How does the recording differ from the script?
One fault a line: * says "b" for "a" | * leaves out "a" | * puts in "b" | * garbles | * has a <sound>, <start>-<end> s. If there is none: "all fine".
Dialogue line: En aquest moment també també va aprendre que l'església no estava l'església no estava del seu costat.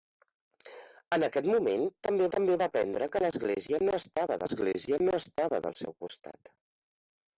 all fine